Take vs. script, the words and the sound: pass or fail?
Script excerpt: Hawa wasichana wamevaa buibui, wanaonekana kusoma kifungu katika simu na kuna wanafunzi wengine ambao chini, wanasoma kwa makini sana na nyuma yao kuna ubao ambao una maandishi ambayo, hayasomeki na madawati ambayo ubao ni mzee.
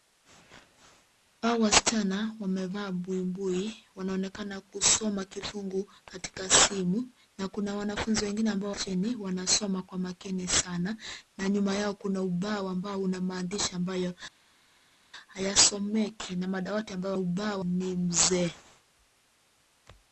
pass